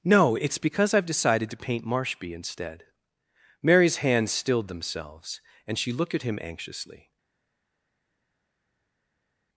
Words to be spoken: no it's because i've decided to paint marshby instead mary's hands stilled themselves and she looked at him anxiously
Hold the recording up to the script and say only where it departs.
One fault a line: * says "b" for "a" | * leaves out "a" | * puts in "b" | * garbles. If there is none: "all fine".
all fine